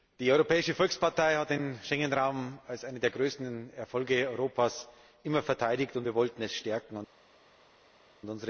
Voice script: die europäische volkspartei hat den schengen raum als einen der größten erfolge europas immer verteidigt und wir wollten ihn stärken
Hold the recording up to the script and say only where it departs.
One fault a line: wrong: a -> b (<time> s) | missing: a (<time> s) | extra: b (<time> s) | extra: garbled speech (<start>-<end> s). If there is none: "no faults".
no faults